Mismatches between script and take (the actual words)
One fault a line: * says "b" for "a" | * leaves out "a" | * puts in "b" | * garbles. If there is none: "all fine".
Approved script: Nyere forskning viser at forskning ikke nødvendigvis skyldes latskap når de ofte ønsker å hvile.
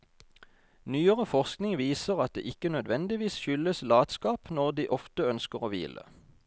* says "det" for "forskning"